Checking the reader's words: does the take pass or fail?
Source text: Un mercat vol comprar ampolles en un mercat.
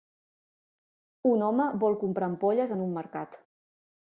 fail